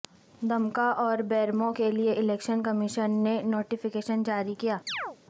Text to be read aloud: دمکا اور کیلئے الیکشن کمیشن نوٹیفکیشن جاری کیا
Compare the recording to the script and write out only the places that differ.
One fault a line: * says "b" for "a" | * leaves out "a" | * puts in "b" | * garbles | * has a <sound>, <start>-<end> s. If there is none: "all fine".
* puts in "بیرمو"
* puts in "نے"
* has a chirp, 4.9-5.2 s